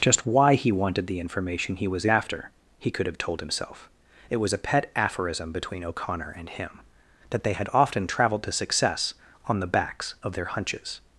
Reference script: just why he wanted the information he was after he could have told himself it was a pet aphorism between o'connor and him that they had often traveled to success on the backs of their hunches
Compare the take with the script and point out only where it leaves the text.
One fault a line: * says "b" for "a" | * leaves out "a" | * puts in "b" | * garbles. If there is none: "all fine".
all fine